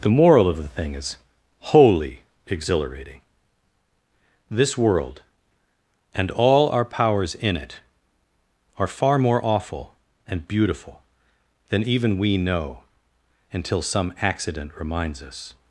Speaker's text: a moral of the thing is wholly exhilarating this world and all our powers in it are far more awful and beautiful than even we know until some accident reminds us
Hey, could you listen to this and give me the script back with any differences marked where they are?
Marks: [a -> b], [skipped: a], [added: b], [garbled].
[a -> the] moral of the thing is wholly exhilarating this world and all our powers in it are far more awful and beautiful than even we know until some accident reminds us